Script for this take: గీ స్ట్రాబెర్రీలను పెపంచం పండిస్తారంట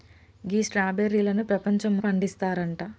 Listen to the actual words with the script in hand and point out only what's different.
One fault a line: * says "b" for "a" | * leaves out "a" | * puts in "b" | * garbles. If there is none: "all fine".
all fine